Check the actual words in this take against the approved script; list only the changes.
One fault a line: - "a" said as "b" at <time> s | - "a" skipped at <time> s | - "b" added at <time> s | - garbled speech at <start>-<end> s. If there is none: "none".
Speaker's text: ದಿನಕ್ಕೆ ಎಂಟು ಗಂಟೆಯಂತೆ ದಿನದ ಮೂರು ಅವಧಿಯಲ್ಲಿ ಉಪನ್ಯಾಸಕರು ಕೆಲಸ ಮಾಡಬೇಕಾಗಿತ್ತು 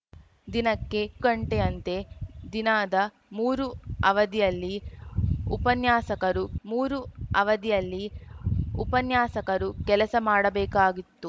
- "ಎಂಟು" skipped at 1.0 s
- "ಮೂರು ಅವಧಿಯಲ್ಲಿ ಉಪನ್ಯಾಸಕರು" added at 6.6 s